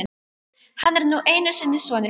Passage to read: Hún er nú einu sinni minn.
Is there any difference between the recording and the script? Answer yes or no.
yes